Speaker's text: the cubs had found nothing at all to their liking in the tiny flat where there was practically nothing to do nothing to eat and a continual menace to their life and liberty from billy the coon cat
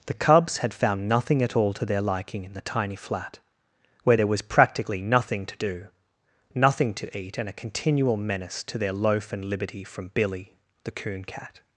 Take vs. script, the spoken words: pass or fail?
fail